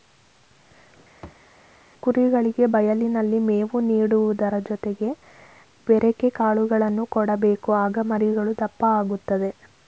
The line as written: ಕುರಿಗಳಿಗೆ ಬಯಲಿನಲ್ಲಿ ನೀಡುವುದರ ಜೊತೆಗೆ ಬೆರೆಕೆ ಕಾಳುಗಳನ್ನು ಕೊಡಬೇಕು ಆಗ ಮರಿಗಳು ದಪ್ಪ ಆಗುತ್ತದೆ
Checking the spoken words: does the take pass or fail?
fail